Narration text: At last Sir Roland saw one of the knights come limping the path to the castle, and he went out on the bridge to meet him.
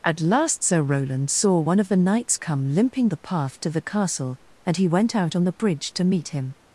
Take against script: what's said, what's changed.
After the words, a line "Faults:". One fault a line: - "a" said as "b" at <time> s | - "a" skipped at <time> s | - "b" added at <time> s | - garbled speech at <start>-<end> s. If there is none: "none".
At last Sir Roland saw one of the knights come limping the path to the castle, and he went out on the bridge to meet him.
Faults:
none